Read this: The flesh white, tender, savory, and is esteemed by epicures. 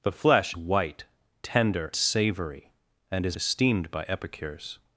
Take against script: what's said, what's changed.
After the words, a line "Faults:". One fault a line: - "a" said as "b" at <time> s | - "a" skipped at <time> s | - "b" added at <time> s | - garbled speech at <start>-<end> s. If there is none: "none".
The flesh white, tender, savory, and is esteemed by epicures.
Faults:
none